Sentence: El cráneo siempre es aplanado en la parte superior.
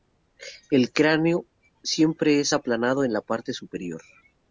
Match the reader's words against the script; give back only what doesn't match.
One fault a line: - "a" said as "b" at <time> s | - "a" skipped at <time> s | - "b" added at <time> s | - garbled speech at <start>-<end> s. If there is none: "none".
none